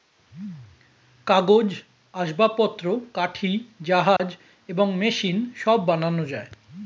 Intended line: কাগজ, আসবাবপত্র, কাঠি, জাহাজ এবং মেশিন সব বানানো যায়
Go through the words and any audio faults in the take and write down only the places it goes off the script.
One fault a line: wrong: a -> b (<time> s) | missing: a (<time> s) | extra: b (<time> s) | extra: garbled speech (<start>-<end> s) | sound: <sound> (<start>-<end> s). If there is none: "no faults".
sound: dropout (4.2-4.2 s)